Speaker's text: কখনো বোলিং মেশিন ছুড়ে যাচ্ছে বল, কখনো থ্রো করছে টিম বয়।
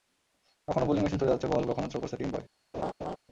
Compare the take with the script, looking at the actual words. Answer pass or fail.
pass